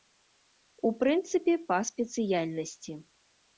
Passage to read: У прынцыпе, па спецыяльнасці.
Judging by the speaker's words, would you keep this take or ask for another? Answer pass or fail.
pass